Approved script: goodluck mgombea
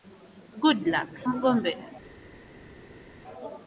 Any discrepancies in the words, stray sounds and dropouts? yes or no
no